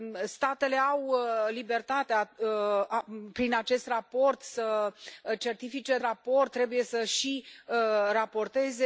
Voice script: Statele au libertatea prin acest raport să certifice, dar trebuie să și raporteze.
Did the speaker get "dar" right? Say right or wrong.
wrong